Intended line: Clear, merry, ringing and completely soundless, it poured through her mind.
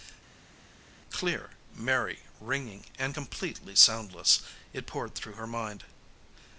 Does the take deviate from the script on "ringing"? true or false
false